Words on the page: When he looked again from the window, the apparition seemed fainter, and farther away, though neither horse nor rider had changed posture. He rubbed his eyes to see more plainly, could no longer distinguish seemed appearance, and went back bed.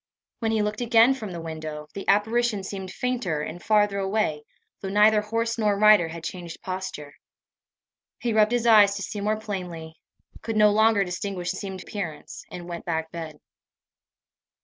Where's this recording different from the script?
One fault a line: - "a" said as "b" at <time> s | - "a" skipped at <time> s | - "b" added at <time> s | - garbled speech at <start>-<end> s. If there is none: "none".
none